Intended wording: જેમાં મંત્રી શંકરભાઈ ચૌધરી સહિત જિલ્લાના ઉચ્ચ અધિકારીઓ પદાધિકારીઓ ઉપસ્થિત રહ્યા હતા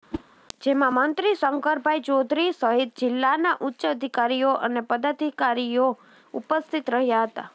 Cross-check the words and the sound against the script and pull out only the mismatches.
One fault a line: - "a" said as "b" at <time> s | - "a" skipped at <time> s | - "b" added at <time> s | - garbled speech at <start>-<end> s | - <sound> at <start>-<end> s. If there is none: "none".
- whoosh at 0.1-0.2 s
- "અને" added at 4.6 s